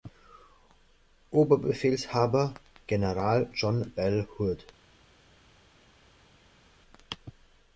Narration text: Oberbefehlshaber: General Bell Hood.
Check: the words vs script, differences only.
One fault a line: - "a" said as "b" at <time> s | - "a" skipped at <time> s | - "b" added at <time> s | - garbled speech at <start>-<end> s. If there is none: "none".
- "John" added at 3.5 s